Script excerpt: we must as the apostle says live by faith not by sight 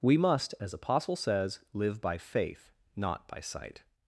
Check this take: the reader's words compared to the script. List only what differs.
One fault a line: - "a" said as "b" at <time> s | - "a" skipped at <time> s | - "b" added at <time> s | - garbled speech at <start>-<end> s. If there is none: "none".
- "the" skipped at 0.7 s